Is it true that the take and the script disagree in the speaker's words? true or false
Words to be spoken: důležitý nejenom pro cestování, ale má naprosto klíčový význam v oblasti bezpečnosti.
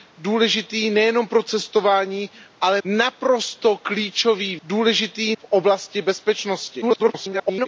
true